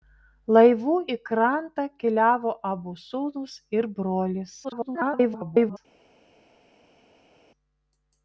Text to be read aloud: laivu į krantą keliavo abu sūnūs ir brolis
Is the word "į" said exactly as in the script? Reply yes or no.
yes